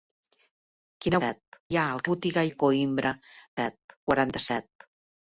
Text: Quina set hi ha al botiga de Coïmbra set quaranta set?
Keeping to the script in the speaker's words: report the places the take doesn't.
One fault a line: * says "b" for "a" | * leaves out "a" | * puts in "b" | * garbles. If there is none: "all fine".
all fine